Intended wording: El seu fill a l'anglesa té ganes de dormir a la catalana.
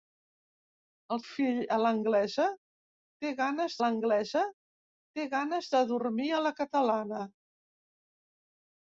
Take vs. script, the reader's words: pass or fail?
fail